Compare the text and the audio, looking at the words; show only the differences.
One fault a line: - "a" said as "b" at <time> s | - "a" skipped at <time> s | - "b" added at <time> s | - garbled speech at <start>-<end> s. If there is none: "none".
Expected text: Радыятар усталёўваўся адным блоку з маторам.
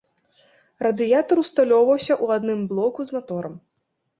- "ў" added at 2.2 s